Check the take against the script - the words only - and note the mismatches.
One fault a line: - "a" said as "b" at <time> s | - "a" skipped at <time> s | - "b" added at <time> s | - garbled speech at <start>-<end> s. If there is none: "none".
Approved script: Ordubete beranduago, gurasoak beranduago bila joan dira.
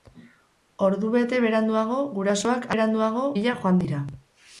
none